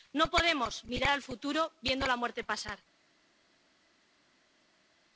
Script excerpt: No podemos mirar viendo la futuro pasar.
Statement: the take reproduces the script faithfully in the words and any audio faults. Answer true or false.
false